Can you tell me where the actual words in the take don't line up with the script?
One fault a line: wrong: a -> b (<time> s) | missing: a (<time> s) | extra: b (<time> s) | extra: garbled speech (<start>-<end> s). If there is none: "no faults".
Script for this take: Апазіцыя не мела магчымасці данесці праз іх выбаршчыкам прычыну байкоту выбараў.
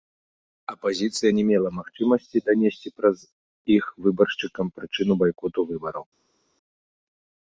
no faults